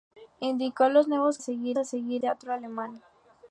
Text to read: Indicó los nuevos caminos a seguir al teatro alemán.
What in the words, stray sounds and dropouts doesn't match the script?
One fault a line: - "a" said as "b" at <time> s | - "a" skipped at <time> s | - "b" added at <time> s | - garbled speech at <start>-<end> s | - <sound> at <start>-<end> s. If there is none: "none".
- "caminos" said as "seguir" at 1.4 s
- "al" skipped at 2.2 s